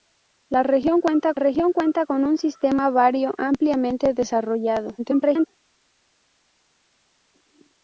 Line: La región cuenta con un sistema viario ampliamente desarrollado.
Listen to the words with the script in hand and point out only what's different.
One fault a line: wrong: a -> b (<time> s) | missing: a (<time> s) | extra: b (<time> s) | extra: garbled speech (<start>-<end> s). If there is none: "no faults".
extra: región cuenta (1.4 s)
extra: garbled speech (5.0-5.5 s)